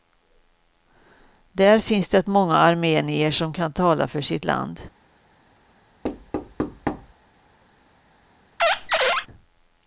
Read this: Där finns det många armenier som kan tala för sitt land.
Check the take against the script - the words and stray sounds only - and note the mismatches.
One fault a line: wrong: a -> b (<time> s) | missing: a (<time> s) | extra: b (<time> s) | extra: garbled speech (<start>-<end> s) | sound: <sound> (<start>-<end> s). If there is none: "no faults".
sound: thud (6.0-7.1 s)
sound: squeak (8.6-9.3 s)